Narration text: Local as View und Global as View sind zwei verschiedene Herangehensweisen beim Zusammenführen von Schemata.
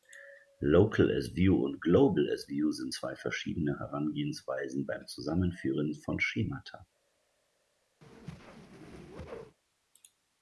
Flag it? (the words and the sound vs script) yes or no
yes